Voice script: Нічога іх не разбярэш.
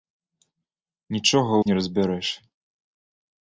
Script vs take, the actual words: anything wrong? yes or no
no